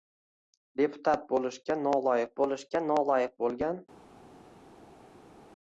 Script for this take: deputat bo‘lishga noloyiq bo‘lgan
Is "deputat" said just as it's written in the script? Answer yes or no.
yes